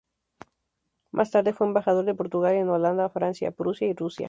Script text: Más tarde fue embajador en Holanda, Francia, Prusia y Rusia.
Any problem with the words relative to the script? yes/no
yes